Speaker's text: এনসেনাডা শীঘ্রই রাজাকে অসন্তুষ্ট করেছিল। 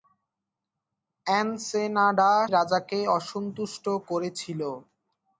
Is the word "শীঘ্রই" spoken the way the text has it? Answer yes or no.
no